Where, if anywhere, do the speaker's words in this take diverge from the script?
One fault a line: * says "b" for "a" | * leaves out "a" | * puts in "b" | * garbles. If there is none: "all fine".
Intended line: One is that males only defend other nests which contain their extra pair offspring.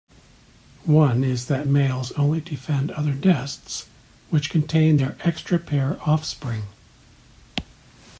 all fine